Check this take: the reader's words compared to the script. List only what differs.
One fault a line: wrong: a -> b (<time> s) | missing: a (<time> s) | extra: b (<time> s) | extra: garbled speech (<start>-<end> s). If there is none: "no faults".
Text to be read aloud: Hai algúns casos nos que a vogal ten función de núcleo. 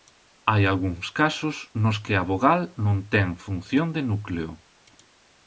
extra: non (2.9 s)